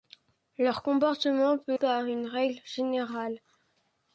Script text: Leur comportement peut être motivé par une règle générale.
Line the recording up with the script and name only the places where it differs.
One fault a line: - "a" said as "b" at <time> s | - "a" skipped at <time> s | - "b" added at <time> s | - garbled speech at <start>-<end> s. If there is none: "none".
- "être motivé" skipped at 1.8 s